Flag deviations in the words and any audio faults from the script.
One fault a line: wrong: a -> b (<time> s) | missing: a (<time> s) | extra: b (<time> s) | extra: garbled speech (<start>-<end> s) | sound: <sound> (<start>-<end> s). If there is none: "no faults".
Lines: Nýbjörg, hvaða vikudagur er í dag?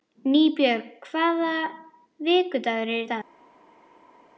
no faults